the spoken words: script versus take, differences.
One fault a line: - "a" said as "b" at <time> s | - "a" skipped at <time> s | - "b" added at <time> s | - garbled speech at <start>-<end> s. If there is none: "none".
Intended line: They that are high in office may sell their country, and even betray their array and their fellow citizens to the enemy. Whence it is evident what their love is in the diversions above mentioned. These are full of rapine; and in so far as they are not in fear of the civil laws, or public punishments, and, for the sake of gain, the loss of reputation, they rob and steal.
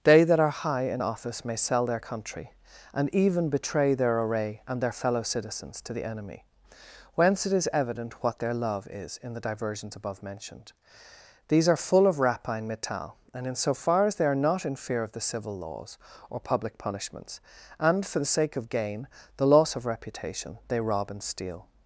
- "metal" added at 12.7 s